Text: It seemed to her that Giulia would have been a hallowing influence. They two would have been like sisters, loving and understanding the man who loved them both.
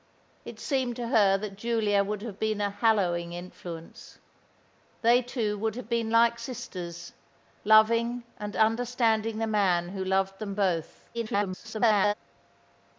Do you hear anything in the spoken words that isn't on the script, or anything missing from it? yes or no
yes